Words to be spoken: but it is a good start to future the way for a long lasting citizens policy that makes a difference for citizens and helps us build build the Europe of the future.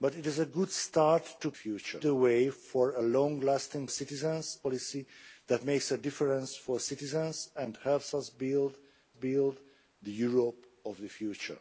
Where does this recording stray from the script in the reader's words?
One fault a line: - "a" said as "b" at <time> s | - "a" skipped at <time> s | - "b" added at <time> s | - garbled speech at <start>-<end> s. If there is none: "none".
none